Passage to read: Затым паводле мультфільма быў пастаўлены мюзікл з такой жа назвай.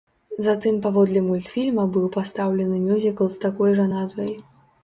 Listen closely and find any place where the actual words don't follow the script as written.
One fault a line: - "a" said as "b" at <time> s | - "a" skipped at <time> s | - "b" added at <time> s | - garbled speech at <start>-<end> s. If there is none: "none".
none